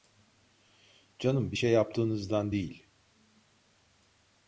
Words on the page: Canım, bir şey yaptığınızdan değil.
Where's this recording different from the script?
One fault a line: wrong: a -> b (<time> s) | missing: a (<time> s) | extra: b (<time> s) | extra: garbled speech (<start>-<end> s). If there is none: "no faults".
no faults